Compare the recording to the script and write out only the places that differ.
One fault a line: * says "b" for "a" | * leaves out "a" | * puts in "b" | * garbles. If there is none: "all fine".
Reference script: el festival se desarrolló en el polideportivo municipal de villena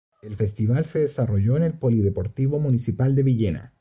all fine